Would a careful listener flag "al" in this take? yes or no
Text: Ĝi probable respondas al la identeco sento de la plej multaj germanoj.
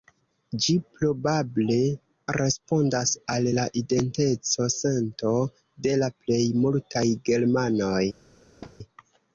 no